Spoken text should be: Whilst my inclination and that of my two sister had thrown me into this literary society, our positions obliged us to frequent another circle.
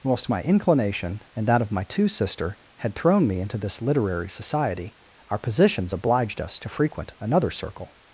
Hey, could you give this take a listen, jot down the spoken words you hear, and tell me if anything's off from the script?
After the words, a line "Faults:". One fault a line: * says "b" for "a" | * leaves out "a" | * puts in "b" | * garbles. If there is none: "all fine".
Whilst my inclination and that of my two sister had thrown me into this literary society, our positions obliged us to frequent another circle.
Faults:
all fine